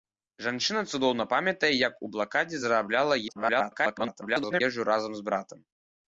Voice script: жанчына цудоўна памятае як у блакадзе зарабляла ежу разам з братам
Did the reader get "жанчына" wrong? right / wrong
right